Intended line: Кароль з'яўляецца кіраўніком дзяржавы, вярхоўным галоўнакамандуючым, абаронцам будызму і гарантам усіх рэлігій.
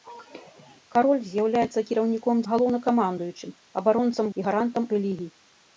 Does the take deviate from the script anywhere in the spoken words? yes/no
yes